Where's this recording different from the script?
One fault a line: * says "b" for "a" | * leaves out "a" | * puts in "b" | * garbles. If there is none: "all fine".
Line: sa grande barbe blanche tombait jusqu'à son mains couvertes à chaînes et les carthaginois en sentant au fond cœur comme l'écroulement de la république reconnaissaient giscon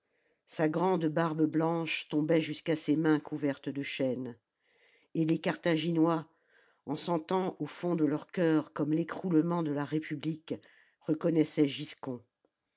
* says "ses" for "son"
* says "de" for "à"
* puts in "de leur"